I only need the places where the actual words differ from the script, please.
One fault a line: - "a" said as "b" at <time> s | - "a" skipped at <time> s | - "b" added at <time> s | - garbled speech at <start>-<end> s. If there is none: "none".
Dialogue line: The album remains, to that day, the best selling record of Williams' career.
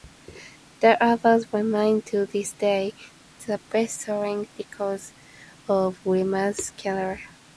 - "that" said as "this" at 2.2 s